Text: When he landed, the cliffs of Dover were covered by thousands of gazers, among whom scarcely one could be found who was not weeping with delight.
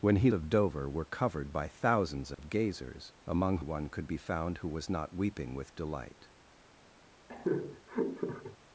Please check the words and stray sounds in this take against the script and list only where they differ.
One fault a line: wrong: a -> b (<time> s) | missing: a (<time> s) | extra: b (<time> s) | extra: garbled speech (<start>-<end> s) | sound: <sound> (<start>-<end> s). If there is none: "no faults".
missing: landed the cliffs (0.3 s)
sound: dropout (2.3-2.4 s)
missing: whom scarcely (3.6 s)
sound: laugh (7.3-8.6 s)